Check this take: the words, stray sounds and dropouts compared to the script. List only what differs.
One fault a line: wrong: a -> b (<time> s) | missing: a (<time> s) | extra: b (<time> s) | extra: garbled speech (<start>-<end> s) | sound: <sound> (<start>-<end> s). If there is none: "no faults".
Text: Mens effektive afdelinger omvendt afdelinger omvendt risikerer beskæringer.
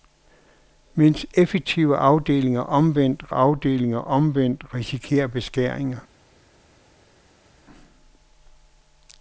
no faults